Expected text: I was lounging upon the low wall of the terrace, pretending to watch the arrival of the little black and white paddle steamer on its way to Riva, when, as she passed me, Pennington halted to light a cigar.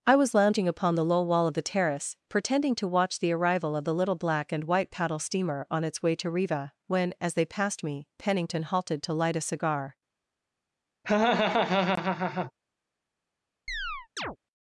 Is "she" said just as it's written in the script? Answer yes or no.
no